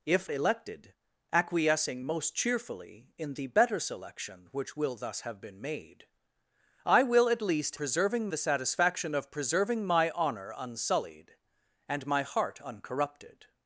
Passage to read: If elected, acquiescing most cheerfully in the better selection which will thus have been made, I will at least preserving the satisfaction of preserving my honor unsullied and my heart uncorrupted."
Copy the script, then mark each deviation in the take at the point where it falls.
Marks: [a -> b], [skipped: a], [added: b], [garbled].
If elected, acquiescing most cheerfully in the better selection which will thus have been made, I will at least preserving the satisfaction of preserving my honor unsullied and my heart uncorrupted."